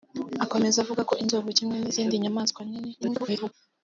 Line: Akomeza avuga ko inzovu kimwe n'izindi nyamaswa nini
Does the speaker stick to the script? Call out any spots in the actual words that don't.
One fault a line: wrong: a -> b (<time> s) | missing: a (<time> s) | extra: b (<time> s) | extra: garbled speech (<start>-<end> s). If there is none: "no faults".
extra: garbled speech (3.0-3.5 s)